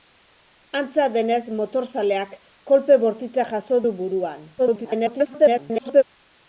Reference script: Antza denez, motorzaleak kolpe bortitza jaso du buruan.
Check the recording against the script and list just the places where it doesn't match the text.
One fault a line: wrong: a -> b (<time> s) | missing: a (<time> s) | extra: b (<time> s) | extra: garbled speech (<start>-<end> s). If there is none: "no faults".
extra: garbled speech (4.6-6.0 s)